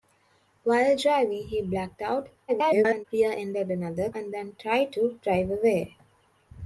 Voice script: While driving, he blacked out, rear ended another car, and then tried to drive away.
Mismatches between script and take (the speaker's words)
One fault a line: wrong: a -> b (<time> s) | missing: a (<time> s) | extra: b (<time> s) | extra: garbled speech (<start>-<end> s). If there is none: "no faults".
extra: garbled speech (2.5-3.0 s)
missing: car (4.1 s)